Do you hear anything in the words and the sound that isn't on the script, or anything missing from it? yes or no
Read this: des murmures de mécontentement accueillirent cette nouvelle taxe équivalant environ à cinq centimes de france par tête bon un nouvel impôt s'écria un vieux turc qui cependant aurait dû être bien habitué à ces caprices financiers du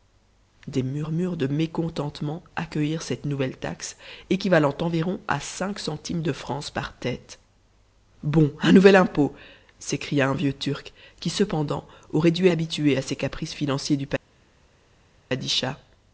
yes